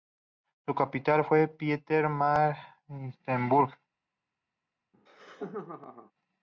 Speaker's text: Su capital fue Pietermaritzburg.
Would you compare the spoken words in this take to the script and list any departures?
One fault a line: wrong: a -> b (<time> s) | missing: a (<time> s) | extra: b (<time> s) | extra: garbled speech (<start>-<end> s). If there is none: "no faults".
no faults